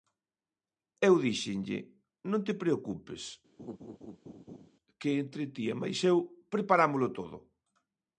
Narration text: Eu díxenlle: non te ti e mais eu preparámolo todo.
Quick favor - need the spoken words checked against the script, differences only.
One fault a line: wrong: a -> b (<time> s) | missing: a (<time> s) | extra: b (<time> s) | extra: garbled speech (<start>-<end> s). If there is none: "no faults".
extra: preocupes que entre (2.6 s)